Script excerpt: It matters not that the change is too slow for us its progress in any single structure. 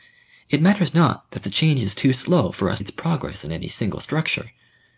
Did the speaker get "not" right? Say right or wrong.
right